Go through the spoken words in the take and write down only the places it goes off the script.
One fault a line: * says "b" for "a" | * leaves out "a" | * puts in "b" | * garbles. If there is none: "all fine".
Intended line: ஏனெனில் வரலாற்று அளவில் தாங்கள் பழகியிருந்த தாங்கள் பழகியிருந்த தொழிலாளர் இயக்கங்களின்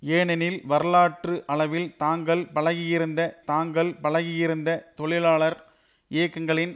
all fine